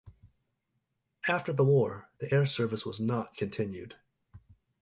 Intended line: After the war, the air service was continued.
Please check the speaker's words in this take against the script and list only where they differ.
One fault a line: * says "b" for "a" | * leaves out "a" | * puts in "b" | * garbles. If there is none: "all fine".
* puts in "not"